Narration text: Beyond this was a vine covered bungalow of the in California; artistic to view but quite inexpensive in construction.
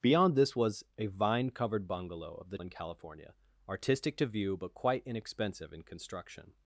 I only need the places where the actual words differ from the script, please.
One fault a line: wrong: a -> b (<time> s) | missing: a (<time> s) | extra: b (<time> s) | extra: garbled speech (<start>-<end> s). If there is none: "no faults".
no faults